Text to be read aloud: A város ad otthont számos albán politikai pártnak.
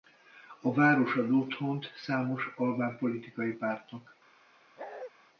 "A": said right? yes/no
yes